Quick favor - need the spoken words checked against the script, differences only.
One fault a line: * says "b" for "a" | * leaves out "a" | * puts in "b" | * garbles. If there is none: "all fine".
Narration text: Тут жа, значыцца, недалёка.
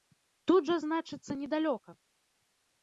all fine